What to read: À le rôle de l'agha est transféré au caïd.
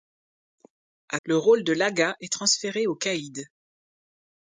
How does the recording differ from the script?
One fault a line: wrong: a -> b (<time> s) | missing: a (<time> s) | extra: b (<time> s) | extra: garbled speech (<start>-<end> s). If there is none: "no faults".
no faults